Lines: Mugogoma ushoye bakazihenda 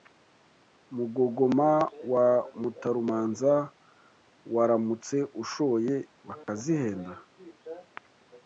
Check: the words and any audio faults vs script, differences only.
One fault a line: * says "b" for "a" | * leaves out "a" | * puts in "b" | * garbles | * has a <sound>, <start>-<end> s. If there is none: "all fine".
* puts in "wa Mutarumanza waramutse"
* has a dropout, 6.4-6.5 s